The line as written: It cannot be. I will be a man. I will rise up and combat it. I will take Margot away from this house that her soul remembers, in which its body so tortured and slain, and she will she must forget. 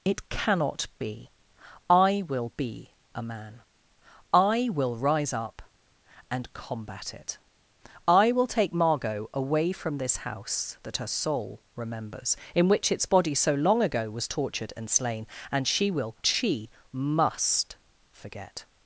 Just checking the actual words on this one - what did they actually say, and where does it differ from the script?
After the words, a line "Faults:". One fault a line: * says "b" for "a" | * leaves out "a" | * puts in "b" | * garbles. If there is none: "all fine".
It cannot be. I will be a man. I will rise up and combat it. I will take Margot away from this house that her soul remembers, in which its body so long ago was tortured and slain, and she will she must forget.
Faults:
* puts in "long ago was"